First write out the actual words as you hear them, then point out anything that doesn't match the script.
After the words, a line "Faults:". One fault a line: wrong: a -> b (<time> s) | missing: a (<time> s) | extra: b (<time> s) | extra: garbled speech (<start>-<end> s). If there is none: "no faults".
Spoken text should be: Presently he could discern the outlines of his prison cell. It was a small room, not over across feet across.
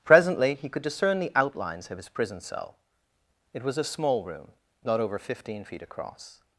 Presently he could discern the outlines of his prison cell. It was a small room, not over fifteen feet across.
Faults:
wrong: across -> fifteen (5.2 s)